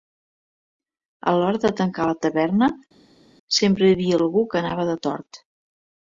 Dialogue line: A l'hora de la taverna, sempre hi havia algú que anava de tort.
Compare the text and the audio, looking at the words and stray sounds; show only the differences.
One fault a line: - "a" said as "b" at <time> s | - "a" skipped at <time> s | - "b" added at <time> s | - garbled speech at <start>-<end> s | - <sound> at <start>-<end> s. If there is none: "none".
- "tancar" added at 1.8 s